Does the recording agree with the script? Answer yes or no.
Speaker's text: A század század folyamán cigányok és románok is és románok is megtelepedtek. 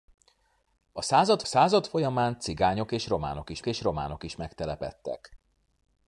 yes